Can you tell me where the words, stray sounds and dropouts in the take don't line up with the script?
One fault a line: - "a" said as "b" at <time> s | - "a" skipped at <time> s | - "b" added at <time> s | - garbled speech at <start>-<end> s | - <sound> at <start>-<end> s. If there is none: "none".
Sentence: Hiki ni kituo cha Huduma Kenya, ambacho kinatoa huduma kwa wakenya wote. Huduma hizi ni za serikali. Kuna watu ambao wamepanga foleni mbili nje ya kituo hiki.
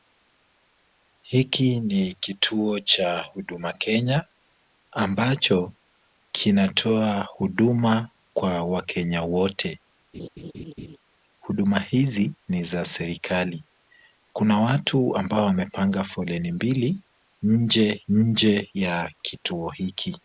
- laugh at 10.1-11.0 s
- "nje" added at 18.1 s